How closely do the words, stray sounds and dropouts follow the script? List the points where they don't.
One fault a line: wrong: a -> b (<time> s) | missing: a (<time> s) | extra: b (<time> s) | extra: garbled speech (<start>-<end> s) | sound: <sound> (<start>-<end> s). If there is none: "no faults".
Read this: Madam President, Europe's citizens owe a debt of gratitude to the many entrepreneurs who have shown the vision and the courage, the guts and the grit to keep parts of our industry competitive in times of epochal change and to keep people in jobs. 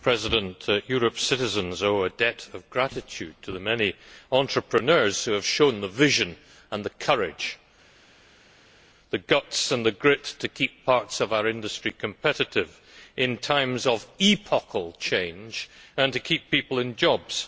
no faults